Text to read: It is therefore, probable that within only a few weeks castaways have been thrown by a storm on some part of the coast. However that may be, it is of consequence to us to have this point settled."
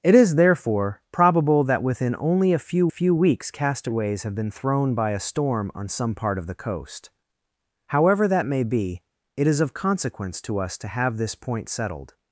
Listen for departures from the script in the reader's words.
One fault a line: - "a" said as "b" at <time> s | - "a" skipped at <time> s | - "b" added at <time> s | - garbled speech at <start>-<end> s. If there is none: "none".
- "few" added at 2.9 s